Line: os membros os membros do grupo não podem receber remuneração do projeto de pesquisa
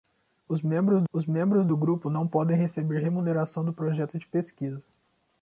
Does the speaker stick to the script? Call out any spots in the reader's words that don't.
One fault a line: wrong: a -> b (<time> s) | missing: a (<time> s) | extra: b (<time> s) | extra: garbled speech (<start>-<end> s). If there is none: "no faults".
no faults